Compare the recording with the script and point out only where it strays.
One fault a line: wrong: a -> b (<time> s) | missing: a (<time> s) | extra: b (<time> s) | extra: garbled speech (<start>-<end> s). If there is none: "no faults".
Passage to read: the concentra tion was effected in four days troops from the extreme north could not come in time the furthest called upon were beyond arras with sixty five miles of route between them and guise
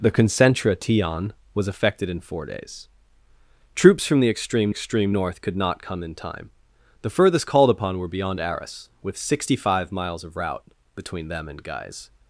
extra: extreme (4.7 s)